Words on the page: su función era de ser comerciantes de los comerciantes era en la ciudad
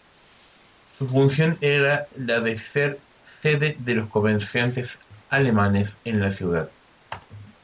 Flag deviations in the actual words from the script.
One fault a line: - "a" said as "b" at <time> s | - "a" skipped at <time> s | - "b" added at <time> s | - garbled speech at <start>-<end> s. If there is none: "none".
- "la" added at 2.1 s
- "comerciantes" said as "sede" at 3.2 s
- "era" said as "alemanes" at 5.3 s